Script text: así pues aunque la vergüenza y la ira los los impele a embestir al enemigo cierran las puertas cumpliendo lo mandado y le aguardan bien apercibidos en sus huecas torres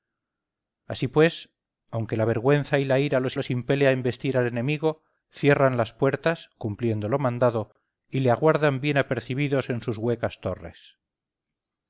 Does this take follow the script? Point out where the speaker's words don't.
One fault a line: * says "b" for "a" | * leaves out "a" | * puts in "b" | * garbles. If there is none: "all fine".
all fine